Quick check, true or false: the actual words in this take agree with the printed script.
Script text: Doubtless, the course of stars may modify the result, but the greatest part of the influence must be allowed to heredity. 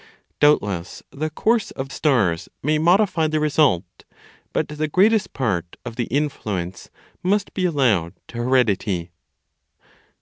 true